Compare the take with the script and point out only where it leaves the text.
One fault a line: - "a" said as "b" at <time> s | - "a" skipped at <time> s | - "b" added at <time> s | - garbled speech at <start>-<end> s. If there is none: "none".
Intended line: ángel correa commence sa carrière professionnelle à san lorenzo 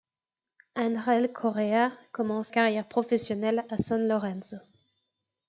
- "sa" skipped at 2.5 s